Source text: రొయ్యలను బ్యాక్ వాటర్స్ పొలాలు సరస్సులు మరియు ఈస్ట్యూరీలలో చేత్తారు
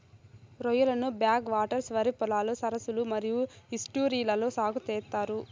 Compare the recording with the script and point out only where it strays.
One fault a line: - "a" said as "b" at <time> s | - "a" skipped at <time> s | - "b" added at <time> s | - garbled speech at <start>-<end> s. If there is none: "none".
- "వరి" added at 1.9 s
- "సాగు" added at 4.6 s